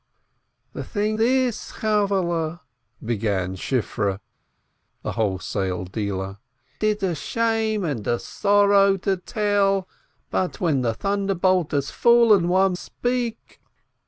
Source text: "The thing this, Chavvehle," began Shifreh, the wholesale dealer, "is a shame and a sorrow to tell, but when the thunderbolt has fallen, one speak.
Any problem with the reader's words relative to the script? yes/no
no